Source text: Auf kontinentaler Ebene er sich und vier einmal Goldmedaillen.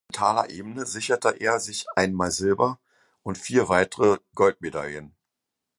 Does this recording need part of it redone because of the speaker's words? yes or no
yes